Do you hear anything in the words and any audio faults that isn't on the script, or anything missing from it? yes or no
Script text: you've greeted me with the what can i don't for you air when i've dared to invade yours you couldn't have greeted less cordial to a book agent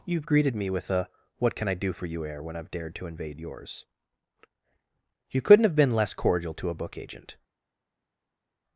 yes